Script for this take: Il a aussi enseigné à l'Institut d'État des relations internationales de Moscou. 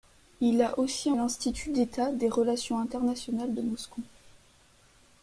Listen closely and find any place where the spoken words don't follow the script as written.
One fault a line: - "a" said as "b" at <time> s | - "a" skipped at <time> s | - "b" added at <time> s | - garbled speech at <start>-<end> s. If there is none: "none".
- "enseigné" skipped at 1.1 s